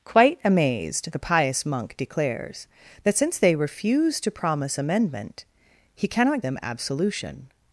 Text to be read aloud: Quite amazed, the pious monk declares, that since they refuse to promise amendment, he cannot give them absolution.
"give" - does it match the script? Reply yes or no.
no